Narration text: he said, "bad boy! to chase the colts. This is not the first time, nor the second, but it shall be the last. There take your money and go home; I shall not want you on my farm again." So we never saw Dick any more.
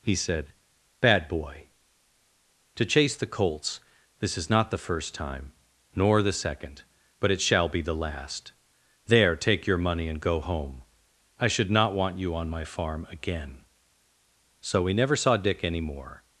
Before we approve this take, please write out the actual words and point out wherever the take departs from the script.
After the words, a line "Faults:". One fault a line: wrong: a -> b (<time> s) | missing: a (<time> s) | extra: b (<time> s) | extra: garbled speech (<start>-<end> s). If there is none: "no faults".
he said, "bad boy! to chase the colts. This is not the first time, nor the second, but it shall be the last. There take your money and go home; I should not want you on my farm again." So we never saw Dick any more.
Faults:
wrong: shall -> should (11.5 s)